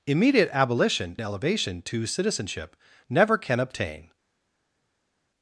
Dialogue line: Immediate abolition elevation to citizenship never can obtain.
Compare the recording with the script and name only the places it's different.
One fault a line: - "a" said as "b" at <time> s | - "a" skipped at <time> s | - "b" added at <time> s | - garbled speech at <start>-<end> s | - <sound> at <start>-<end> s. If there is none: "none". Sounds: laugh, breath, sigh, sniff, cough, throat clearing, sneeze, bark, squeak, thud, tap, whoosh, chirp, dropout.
none